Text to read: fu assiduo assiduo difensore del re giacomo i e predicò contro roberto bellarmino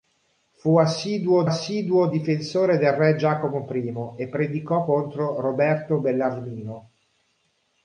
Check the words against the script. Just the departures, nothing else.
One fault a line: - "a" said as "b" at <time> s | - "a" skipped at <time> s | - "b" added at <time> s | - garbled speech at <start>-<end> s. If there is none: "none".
none